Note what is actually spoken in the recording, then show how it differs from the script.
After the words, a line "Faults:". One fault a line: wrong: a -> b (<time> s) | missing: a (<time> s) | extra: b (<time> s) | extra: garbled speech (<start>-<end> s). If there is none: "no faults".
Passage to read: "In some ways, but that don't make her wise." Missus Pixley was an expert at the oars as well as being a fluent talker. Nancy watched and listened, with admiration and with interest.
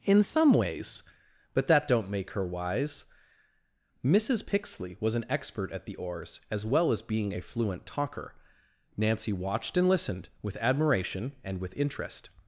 "In some ways, but that don't make her wise." Missus Pixley was an expert at the oars as well as being a fluent talker. Nancy watched and listened, with admiration and with interest.
Faults:
no faults